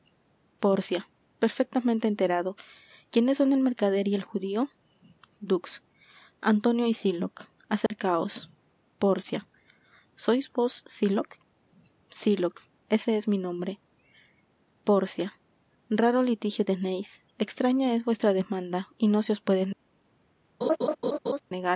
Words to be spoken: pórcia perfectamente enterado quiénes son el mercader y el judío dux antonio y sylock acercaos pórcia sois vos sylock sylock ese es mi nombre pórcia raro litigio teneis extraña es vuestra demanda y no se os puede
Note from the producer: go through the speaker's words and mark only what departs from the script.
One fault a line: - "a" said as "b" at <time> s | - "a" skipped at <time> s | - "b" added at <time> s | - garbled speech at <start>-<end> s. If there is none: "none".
none